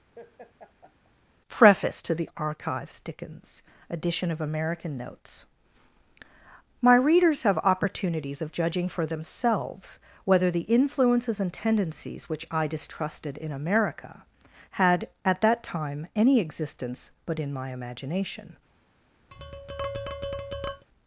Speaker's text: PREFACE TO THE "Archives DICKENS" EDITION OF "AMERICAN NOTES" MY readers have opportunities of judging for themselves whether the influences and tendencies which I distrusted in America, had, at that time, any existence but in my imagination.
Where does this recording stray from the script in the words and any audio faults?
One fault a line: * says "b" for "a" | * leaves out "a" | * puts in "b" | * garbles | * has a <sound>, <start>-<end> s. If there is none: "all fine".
* has a laugh, 0.2-1.1 s
* has a tap, 19.3-20.9 s